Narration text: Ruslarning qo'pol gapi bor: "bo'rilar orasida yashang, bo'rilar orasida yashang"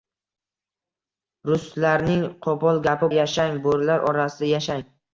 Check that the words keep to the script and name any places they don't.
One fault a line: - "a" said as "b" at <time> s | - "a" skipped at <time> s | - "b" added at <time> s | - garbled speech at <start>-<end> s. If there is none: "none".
- "bor bo'rilar orasida" skipped at 3.1 s